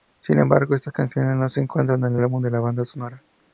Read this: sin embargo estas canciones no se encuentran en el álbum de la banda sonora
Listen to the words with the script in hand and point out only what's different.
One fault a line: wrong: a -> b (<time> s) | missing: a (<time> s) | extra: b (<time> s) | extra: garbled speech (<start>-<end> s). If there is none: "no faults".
no faults